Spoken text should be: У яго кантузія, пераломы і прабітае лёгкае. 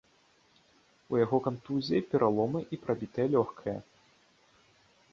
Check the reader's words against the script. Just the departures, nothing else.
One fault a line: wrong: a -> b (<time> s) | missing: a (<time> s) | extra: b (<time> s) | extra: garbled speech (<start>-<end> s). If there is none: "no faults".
no faults